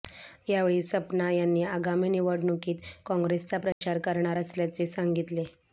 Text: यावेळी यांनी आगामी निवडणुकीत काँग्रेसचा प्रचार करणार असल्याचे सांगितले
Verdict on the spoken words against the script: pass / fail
fail